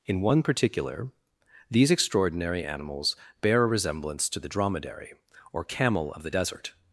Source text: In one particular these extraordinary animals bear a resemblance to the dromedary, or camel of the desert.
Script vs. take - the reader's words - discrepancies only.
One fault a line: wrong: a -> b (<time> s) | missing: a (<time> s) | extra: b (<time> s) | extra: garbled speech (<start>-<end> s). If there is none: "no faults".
no faults